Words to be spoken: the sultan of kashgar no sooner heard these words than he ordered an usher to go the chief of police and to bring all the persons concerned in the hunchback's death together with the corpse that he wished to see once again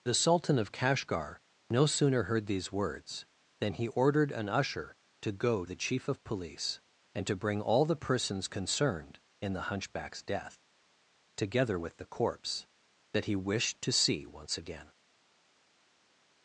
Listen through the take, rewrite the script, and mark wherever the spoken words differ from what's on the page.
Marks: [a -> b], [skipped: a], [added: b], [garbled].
the sultan of kashgar no sooner heard these words than he ordered an usher to go the chief of police and to bring all the persons concerned in the hunchback's death together with the corpse that he wished to see once again